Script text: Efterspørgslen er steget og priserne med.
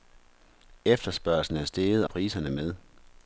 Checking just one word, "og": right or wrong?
wrong